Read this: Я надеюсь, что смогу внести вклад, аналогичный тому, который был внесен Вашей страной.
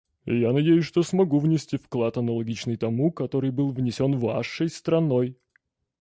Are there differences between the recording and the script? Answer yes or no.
no